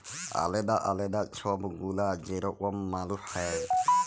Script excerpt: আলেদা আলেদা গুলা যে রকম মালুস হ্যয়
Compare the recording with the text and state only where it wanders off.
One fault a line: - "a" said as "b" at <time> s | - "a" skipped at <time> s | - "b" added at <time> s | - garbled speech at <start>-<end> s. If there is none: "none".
- "ছব" added at 1.3 s